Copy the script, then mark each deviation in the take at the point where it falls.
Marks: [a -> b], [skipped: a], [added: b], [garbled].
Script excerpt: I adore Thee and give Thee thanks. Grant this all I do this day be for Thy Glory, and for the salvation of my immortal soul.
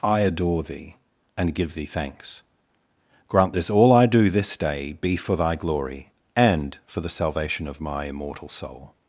I adore Thee and give Thee thanks. Grant this all I do this day be for Thy Glory, and for the salvation of my immortal soul.